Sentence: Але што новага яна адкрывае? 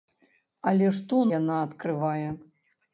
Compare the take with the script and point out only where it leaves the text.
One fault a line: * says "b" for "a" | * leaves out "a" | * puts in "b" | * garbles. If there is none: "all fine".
* leaves out "новага"